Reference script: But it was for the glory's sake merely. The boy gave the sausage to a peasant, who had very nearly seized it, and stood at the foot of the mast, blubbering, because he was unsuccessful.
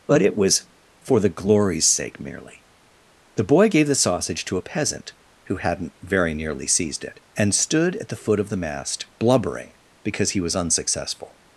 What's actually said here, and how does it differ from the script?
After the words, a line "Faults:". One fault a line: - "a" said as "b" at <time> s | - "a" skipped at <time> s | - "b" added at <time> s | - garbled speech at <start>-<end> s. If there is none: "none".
But it was for the glory's sake merely. The boy gave the sausage to a peasant, who hadn't very nearly seized it, and stood at the foot of the mast, blubbering, because he was unsuccessful.
Faults:
- "had" said as "hadn't" at 5.6 s